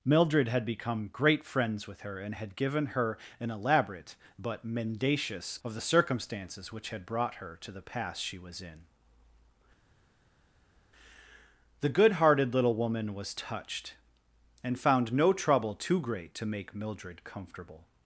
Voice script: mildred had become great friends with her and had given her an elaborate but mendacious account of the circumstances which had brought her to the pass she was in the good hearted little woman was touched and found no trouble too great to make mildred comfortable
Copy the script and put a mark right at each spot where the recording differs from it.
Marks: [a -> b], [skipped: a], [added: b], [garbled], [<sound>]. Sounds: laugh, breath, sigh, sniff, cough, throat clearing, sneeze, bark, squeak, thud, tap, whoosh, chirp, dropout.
mildred had become great friends with her and had given her an elaborate but mendacious [skipped: account] of the circumstances which had brought her to the pass she was in the good hearted little woman was touched and found no trouble too great to make mildred comfortable